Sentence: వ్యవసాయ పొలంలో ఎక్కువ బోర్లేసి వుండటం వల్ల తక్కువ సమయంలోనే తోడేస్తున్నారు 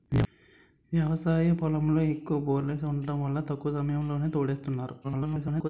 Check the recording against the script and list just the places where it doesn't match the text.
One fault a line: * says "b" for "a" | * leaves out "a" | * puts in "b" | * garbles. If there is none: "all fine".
* garbles